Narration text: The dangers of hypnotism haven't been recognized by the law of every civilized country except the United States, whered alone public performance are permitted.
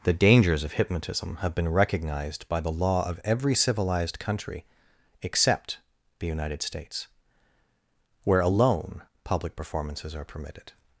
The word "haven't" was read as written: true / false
false